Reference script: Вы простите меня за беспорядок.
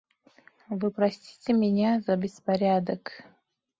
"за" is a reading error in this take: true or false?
false